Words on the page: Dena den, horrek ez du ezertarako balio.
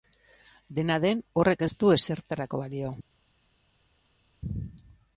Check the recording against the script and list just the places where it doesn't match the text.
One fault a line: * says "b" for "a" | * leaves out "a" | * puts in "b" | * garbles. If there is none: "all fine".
all fine